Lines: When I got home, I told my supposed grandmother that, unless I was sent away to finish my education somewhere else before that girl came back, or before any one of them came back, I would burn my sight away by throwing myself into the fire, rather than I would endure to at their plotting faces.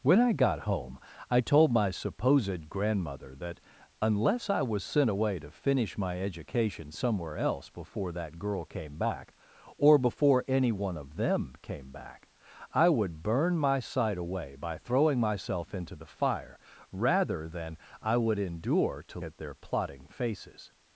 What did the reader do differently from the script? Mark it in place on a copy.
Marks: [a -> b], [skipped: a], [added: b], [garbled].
When I got home, I told my supposed grandmother that, unless I was sent away to finish my education somewhere else before that girl came back, or before any one of them came back, I would burn my sight away by throwing myself into the fire, rather than I would endure to at their plotting faces.